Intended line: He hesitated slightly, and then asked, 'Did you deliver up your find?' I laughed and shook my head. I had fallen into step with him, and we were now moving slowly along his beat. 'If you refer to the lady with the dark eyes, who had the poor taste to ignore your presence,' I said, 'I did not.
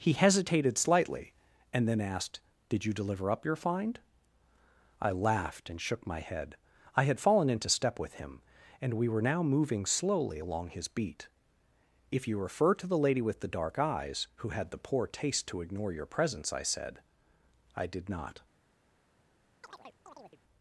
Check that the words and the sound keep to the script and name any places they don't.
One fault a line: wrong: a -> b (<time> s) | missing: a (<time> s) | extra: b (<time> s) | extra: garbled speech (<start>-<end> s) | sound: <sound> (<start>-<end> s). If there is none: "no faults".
sound: chirp (19.6-20.4 s)